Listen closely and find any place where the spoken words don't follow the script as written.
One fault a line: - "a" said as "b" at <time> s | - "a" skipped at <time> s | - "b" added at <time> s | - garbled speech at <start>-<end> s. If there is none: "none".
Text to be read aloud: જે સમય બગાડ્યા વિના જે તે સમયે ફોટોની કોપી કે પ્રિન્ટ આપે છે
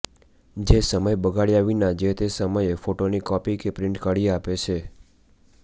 - "કાઢી" added at 4.0 s